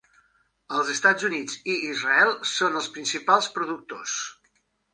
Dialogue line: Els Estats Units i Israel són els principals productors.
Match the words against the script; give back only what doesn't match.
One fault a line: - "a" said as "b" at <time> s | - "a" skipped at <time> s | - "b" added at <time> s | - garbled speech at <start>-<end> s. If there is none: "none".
none